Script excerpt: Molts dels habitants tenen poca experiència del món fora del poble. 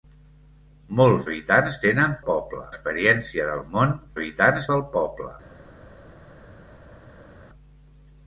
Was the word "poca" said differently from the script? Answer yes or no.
yes